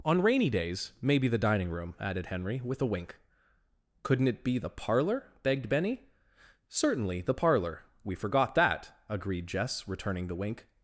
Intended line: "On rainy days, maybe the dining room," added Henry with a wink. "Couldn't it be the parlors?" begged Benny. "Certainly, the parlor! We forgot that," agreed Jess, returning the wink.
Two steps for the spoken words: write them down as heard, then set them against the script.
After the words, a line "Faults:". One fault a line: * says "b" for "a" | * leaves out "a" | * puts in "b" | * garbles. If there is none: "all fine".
"On rainy days, maybe the dining room," added Henry with a wink. "Couldn't it be the parlor?" begged Benny. "Certainly, the parlor! We forgot that," agreed Jess, returning the wink.
Faults:
* says "parlor" for "parlors"